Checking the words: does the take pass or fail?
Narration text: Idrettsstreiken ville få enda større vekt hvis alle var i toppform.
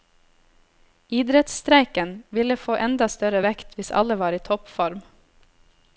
pass